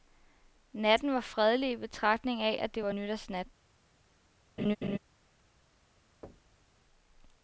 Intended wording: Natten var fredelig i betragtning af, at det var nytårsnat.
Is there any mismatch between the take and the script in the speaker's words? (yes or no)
no